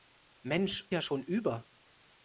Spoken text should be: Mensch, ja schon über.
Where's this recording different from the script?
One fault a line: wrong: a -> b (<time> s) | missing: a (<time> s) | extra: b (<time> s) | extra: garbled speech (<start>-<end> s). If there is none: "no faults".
no faults